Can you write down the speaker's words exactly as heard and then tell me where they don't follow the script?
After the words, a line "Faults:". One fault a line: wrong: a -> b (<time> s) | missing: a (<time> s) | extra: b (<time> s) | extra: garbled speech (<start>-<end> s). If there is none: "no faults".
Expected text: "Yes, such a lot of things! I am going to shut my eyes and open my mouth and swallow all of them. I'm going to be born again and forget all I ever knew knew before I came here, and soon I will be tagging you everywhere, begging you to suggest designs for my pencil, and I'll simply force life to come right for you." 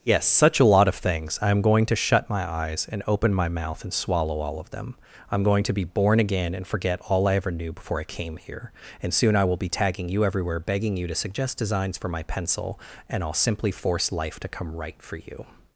"Yes, such a lot of things! I am going to shut my eyes and open my mouth and swallow all of them. I'm going to be born again and forget all I ever knew before I came here, and soon I will be tagging you everywhere, begging you to suggest designs for my pencil, and I'll simply force life to come right for you."
Faults:
missing: knew (7.7 s)